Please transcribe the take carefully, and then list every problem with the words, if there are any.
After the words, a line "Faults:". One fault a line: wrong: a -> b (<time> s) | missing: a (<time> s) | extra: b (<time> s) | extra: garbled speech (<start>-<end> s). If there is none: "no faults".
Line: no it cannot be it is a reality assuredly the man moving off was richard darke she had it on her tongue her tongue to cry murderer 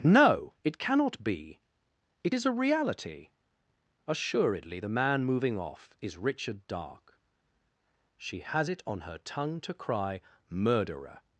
no it cannot be it is a reality assuredly the man moving off is richard darke she has it on her tongue to cry murderer
Faults:
wrong: was -> is (6.0 s)
wrong: had -> has (8.4 s)
missing: her tongue (9.6 s)